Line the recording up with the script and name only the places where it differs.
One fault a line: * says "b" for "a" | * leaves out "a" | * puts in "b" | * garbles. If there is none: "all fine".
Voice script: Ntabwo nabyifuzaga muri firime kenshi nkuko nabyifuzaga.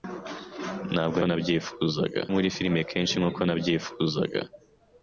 all fine